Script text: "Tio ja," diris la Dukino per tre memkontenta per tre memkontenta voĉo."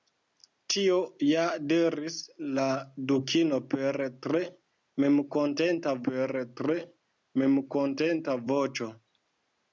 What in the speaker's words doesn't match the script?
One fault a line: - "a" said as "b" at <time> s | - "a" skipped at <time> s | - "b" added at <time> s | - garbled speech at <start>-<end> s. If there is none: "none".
none